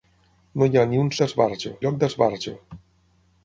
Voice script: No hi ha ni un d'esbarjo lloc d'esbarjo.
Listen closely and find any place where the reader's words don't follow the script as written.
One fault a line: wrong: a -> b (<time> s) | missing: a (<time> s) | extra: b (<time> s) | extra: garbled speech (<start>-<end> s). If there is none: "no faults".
no faults